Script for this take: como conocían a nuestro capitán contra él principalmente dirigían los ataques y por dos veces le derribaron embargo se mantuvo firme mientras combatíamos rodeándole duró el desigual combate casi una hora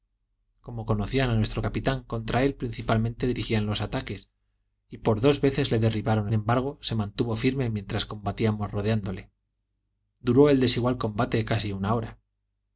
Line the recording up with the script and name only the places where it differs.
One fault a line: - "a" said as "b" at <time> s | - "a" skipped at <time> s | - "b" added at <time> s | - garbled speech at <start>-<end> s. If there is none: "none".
none